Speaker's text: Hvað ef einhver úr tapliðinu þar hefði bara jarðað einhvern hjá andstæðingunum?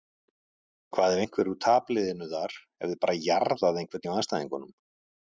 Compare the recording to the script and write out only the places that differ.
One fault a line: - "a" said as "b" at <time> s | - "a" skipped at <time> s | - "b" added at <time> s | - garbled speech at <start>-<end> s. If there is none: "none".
none